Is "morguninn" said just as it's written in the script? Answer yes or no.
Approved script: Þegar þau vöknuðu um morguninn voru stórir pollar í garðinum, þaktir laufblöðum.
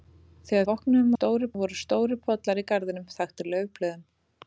no